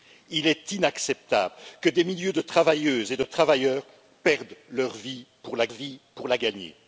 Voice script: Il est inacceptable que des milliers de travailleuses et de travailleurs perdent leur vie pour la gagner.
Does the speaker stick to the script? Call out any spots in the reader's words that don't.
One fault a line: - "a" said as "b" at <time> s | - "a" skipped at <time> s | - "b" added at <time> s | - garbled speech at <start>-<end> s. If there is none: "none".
- "vie pour la" added at 5.7 s